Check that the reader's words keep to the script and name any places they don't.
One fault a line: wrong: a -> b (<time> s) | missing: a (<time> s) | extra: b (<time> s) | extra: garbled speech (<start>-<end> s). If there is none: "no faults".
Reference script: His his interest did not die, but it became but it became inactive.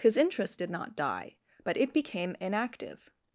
missing: his (0.2 s)
missing: but it became (2.4 s)